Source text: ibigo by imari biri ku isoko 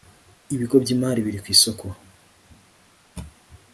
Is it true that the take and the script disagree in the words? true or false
false